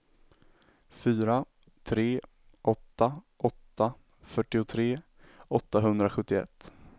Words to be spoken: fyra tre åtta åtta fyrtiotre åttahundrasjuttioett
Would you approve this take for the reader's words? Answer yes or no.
yes